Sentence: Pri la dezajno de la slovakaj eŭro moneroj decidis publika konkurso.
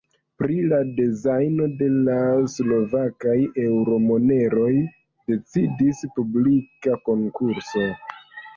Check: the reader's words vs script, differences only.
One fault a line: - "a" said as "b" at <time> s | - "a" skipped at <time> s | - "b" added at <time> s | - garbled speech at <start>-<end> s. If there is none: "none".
none